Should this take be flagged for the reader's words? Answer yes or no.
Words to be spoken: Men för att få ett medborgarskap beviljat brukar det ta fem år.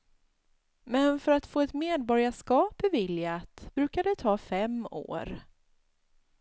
no